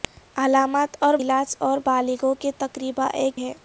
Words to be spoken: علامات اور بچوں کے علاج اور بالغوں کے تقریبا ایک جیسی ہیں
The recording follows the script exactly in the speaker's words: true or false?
false